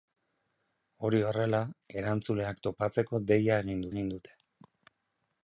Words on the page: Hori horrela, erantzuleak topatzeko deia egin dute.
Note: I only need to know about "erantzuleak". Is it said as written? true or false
true